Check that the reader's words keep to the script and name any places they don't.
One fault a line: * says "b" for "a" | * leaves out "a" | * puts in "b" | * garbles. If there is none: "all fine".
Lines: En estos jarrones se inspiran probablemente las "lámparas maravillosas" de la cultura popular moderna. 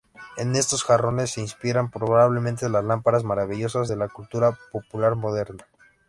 all fine